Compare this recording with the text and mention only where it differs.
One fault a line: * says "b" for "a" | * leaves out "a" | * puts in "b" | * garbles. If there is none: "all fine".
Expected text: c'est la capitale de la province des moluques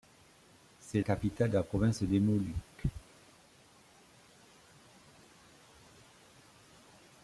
* leaves out "la"